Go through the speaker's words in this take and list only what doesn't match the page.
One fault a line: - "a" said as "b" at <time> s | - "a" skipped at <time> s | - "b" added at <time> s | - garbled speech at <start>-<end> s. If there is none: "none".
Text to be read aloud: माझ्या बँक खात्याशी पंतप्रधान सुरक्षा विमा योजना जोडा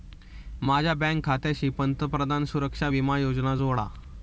none